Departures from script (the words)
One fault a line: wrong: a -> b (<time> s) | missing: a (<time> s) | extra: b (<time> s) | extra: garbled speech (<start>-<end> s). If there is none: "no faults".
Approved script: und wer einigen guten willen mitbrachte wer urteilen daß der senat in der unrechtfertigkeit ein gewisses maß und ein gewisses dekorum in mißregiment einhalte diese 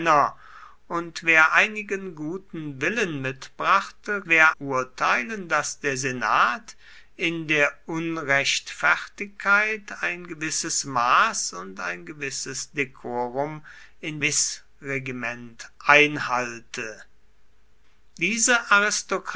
no faults